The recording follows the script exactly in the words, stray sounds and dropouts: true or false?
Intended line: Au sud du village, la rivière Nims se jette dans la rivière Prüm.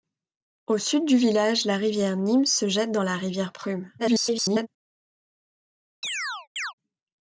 false